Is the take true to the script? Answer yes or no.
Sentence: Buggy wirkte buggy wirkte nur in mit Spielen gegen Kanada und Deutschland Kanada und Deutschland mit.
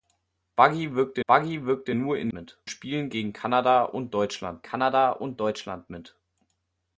yes